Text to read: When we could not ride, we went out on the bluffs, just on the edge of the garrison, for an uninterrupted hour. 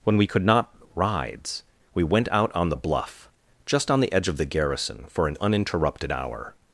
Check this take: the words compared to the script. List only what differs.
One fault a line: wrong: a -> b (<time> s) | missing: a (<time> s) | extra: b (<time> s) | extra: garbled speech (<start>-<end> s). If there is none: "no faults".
wrong: ride -> rides (0.9 s)
wrong: bluffs -> bluff (2.8 s)